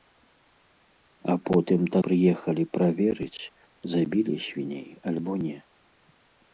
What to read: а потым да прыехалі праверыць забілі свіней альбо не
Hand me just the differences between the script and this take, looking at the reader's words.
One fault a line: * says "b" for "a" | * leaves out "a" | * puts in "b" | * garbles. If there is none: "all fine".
all fine